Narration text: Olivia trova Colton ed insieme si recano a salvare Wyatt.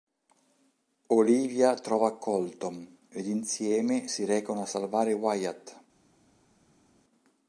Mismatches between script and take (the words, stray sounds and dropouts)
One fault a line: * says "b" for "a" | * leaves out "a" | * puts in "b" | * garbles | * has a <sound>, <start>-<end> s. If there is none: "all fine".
all fine